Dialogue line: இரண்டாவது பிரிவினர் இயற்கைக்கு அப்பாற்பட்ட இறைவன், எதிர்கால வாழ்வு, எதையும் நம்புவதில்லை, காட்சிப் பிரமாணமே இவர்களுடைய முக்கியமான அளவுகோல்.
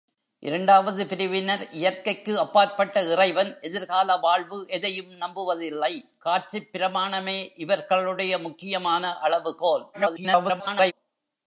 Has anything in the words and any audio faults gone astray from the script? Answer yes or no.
yes